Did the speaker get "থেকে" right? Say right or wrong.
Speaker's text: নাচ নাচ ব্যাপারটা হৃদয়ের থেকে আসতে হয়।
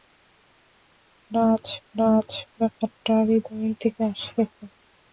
right